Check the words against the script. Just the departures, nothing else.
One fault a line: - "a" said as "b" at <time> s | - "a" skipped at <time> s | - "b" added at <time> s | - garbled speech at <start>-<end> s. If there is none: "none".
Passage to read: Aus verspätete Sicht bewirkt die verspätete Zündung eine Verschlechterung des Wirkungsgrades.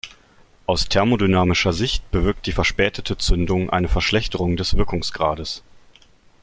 - "verspätete" said as "thermodynamischer" at 0.9 s